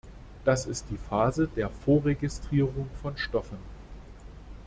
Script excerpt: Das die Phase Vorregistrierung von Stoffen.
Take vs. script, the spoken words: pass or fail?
fail